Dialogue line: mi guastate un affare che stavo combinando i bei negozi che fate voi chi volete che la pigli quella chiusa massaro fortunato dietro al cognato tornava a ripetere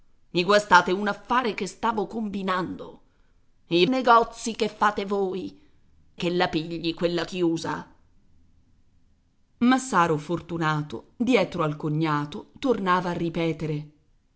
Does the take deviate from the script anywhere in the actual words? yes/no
yes